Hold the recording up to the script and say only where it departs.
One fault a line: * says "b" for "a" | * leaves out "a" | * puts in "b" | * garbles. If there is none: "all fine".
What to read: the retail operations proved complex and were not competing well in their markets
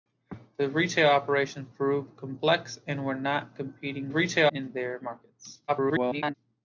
* says "retail" for "well"
* garbles